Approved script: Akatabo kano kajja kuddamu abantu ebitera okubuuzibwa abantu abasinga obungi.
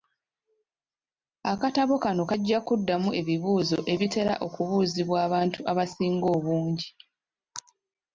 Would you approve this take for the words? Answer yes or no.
no